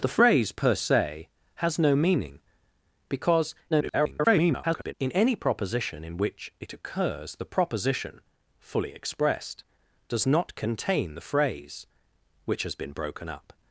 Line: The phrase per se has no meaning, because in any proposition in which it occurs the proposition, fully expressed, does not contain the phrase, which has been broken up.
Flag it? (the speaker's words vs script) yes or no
yes